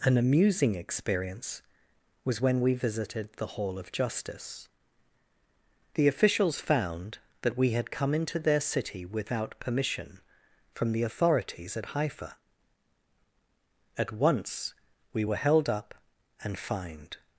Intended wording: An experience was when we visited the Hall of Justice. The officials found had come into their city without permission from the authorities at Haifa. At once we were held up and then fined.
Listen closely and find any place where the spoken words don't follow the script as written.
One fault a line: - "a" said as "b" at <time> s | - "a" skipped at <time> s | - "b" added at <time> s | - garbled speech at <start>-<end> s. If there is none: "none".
- "amusing" added at 0.2 s
- "that we" added at 7.4 s
- "then" skipped at 16.6 s